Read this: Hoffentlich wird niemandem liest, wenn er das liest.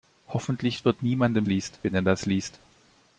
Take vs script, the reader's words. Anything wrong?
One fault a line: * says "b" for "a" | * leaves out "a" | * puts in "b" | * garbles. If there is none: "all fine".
all fine